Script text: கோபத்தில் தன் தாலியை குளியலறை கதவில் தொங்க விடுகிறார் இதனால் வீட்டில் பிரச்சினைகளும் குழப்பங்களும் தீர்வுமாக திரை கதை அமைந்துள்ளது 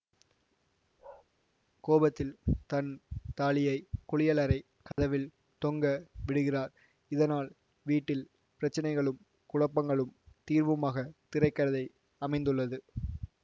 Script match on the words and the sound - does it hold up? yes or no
no